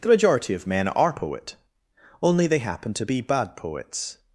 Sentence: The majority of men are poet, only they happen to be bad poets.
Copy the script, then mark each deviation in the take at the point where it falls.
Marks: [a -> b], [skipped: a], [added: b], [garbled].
The majority of men are poet, only they happen to be bad poets.